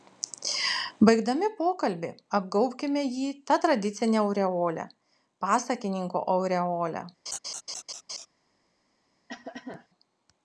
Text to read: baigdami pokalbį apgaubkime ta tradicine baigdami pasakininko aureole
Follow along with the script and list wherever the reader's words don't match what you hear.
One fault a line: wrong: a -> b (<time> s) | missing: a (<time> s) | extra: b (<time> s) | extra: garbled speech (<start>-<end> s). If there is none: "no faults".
extra: jį (3.2 s)
wrong: baigdami -> aureole (4.2 s)